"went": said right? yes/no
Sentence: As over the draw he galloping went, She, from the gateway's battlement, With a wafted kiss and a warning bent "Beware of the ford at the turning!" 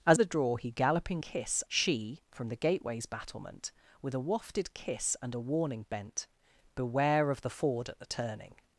no